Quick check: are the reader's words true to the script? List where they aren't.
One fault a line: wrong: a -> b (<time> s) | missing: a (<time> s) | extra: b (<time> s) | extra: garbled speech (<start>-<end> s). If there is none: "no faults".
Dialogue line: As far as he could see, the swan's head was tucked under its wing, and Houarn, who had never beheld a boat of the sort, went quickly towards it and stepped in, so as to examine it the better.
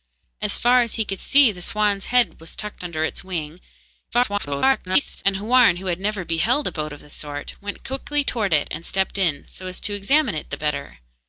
extra: garbled speech (4.1-5.2 s)